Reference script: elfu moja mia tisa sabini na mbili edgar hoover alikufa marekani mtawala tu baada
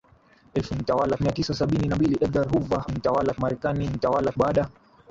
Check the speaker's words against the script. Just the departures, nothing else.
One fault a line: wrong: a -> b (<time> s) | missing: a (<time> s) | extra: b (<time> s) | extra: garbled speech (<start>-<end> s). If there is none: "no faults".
wrong: moja -> mtawala (0.7 s)
wrong: alikufa -> mtawala (2.9 s)
missing: tu (4.3 s)